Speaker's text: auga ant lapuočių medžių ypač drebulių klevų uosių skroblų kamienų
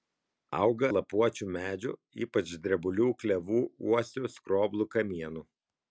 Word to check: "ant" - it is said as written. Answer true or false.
false